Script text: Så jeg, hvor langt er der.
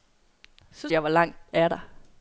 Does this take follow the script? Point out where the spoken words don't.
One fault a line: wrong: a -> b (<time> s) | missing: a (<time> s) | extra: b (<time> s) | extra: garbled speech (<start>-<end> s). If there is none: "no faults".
no faults